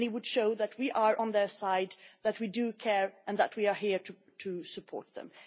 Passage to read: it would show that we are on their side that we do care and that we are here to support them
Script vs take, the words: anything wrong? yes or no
no